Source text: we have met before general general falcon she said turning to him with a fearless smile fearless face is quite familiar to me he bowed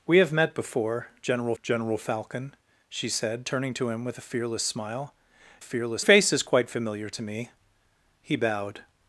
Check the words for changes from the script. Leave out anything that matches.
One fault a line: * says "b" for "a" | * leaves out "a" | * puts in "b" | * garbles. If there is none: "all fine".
all fine